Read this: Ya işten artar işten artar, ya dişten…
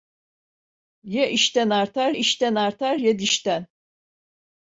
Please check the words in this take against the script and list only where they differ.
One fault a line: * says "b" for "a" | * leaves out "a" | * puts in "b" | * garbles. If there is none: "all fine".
all fine